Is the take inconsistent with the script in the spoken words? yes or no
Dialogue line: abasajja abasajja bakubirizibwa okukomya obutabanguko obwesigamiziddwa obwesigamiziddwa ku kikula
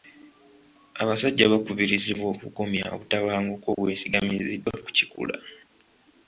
yes